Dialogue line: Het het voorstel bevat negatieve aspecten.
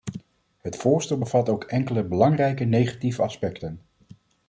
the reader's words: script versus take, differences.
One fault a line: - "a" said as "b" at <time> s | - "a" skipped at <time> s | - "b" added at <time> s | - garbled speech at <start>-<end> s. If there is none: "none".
- "het" skipped at 0.8 s
- "ook enkele belangrijke" added at 1.5 s